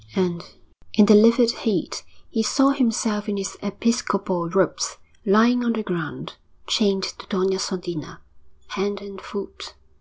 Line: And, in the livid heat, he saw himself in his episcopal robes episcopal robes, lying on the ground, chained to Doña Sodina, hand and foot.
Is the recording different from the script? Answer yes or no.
yes